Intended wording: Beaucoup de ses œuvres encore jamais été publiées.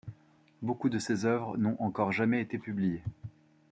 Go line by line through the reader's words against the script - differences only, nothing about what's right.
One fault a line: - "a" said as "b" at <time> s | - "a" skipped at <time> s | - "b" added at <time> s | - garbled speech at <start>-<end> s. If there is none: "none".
- "n'ont" added at 1.6 s